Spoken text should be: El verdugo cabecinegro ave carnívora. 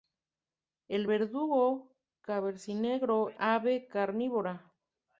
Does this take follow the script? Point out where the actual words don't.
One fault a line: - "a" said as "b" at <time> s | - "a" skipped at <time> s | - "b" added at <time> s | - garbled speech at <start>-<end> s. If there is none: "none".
none